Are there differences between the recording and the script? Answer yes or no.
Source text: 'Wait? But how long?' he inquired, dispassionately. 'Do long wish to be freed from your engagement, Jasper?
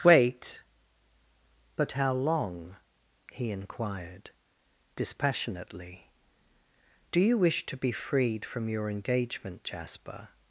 yes